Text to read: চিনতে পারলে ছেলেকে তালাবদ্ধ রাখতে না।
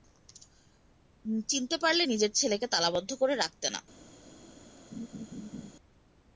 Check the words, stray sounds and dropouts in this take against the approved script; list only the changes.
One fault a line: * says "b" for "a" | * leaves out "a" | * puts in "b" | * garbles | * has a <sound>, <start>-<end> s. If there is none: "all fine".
* puts in "নিজের"
* puts in "করে"
* has a laugh, 4.9-5.7 s